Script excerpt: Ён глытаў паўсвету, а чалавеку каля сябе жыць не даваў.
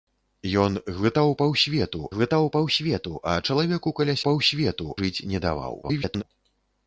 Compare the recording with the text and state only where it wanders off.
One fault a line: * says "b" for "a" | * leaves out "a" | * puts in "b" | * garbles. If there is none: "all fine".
* puts in "глытаў паўсвету"
* says "паўсвету" for "сябе"
* garbles